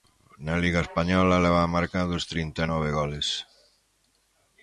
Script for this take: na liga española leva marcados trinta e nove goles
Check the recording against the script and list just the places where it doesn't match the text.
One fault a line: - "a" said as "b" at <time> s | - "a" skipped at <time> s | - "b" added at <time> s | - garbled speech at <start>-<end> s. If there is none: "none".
none